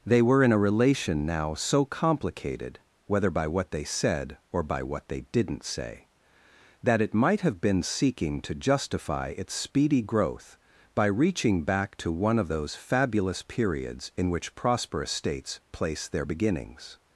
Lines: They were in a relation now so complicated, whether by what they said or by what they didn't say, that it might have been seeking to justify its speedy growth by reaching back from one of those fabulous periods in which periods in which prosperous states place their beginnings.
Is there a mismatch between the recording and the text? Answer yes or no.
yes